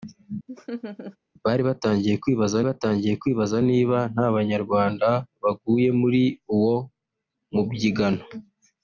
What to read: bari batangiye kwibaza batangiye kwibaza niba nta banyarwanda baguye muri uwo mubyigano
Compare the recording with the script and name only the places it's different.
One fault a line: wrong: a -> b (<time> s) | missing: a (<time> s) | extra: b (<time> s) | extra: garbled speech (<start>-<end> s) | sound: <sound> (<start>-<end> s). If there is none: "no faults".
sound: laugh (0.5-1.2 s)